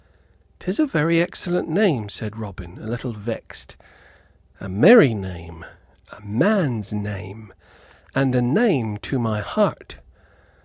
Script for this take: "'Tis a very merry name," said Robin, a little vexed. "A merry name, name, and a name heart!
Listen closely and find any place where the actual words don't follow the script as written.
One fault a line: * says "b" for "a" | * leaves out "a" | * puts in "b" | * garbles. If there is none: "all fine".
* says "excellent" for "merry"
* puts in "a man's"
* puts in "to my"